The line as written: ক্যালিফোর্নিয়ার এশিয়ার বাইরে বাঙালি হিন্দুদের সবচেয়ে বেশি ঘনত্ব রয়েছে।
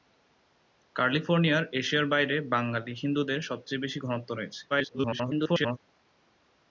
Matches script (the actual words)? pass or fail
fail